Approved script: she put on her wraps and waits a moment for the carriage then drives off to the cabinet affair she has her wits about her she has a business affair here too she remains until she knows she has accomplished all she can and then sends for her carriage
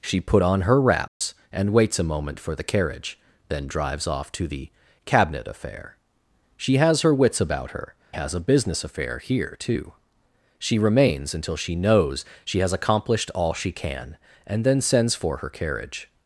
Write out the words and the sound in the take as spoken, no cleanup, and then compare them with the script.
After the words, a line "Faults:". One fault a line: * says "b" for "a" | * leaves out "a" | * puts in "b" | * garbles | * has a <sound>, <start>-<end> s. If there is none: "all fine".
she put on her wraps and waits a moment for the carriage then drives off to the cabinet affair she has her wits about her has a business affair here too she remains until she knows she has accomplished all she can and then sends for her carriage
Faults:
* has a dropout, 1.1-1.2 s
* leaves out "she"